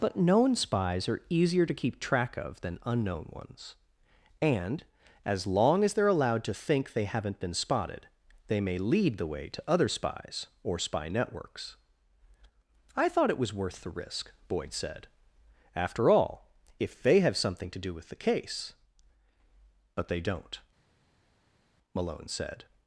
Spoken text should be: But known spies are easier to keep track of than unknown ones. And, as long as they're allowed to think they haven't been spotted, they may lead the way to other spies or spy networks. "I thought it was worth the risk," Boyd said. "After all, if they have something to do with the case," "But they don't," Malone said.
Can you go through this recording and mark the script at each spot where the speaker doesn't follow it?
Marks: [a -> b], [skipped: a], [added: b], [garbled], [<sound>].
But known spies are easier to keep track of than unknown ones. And, as long as they're allowed to think they haven't been spotted, they may lead the way to other spies or spy networks. "I thought it was worth the risk," Boyd said. "After all, if they have something to do with the case," "But they don't," Malone said.